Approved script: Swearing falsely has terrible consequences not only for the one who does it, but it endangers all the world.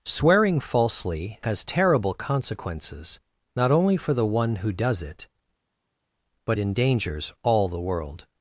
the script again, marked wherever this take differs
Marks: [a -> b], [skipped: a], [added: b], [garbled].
Swearing falsely has terrible consequences not only for the one who does it, but [skipped: it] endangers all the world.